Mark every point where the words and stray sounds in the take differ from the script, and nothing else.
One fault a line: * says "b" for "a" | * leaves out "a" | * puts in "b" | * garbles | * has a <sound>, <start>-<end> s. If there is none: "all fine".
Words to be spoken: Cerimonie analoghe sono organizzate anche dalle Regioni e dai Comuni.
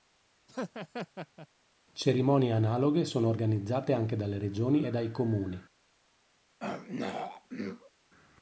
* has a laugh, 0.5-1.5 s
* has a throat clearing, 6.6-7.9 s